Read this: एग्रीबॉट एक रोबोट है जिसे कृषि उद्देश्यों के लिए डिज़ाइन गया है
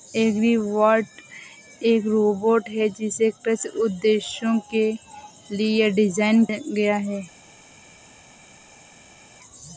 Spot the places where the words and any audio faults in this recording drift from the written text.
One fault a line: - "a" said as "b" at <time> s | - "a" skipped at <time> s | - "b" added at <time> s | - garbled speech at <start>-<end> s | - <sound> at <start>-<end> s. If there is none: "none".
none